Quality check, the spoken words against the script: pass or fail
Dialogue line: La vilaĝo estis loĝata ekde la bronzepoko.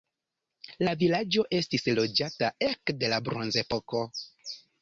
pass